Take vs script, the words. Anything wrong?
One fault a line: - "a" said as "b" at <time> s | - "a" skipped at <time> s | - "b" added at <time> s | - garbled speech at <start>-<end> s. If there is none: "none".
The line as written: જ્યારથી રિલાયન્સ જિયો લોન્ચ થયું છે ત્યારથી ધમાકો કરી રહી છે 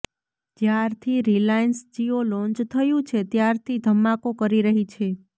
none